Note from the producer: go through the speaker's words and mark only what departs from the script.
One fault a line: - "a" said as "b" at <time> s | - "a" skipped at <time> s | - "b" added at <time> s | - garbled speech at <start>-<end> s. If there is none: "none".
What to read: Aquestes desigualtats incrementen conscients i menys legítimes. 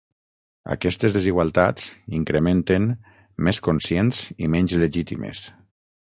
- "més" added at 3.5 s